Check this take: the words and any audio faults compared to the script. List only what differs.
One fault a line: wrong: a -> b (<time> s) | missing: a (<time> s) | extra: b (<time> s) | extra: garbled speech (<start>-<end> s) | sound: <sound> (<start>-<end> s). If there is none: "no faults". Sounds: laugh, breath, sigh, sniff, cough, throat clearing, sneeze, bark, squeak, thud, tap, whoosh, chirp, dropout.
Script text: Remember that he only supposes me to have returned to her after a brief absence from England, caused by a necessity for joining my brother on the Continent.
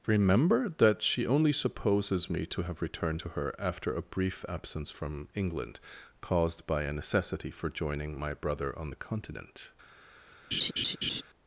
wrong: he -> she (1.0 s)
sound: laugh (10.5-11.2 s)